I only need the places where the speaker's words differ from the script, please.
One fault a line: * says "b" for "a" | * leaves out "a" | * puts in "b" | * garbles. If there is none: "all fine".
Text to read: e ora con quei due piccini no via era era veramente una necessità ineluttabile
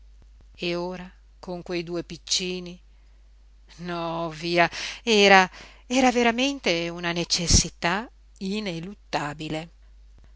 all fine